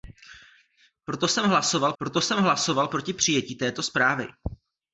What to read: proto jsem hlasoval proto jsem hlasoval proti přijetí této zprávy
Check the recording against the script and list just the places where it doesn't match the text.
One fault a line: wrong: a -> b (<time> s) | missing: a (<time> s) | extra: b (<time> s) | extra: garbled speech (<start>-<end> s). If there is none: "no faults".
no faults